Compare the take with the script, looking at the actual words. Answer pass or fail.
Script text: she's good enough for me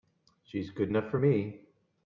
pass